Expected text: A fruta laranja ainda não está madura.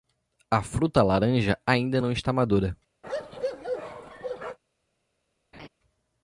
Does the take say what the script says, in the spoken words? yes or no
yes